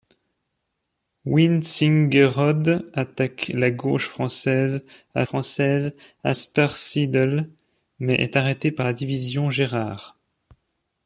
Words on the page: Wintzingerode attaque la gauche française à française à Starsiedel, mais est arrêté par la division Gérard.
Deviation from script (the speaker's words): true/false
false